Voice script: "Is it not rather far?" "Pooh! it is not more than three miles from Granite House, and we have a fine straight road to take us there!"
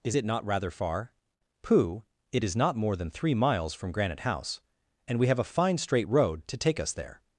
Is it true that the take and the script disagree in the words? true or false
false